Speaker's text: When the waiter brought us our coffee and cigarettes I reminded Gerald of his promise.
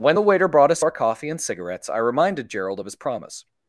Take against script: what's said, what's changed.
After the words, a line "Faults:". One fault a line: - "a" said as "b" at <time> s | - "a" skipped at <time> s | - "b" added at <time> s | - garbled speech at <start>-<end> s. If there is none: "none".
When the waiter brought us our coffee and cigarettes I reminded Gerald of his promise.
Faults:
none